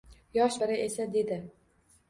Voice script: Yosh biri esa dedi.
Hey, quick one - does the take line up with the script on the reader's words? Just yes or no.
yes